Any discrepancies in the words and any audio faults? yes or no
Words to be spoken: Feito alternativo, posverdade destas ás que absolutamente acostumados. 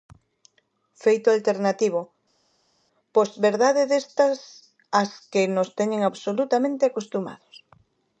yes